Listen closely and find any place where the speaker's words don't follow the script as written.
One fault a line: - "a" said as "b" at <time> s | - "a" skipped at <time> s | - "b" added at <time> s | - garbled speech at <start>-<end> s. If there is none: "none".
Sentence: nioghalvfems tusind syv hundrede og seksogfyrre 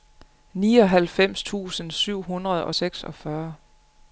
none